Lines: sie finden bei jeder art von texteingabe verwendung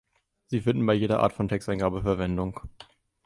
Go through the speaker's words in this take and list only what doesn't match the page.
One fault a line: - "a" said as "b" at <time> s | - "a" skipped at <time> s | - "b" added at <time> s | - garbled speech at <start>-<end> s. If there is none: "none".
none